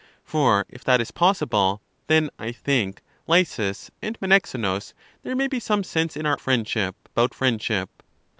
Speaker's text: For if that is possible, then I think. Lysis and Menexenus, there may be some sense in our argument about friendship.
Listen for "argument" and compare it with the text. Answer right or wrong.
wrong